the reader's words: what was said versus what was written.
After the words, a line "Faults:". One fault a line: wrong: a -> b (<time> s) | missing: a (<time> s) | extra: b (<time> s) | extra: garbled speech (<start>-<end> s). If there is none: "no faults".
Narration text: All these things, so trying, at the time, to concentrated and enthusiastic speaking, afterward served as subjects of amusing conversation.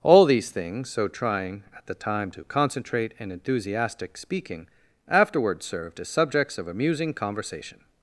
All these things, so trying, at the time, to concentrate and enthusiastic speaking, afterward served as subjects of amusing conversation.
Faults:
wrong: concentrated -> concentrate (2.4 s)